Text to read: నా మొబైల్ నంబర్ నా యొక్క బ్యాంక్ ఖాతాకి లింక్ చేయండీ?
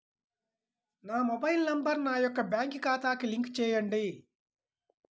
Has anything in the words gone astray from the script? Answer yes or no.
no